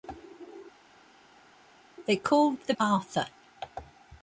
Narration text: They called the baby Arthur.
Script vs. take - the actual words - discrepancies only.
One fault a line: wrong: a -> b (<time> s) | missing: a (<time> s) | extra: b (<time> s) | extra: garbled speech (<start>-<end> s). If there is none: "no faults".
missing: baby (2.7 s)